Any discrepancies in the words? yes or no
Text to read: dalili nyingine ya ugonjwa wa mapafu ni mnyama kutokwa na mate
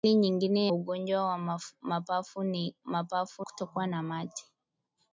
yes